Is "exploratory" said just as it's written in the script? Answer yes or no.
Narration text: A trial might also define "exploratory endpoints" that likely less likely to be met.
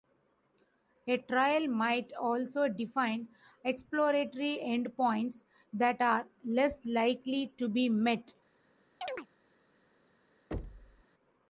yes